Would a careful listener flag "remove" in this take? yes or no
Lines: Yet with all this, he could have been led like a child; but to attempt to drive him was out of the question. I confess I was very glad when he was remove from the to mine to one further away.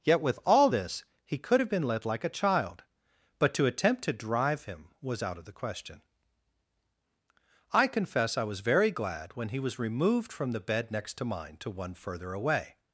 yes